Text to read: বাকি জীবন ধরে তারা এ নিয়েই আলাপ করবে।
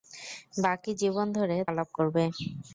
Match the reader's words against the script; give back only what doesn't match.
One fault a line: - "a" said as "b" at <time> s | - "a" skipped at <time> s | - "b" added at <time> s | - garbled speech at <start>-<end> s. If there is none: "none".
- "তারা এ নিয়েই" skipped at 1.6 s